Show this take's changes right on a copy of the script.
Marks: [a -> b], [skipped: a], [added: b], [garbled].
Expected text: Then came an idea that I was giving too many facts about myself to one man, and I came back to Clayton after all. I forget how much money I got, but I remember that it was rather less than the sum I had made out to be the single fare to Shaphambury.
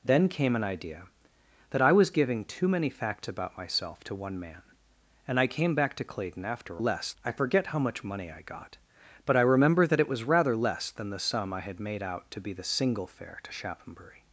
Then came an idea that I was giving too many facts about myself to one man, and I came back to Clayton after [all. -> less] I forget how much money I got, but I remember that it was rather less than the sum I had made out to be the single fare to Shaphambury.